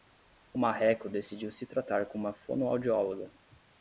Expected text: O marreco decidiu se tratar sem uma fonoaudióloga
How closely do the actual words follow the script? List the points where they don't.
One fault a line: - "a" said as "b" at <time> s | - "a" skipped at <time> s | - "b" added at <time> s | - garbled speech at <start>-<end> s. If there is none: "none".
- "sem" said as "com" at 2.0 s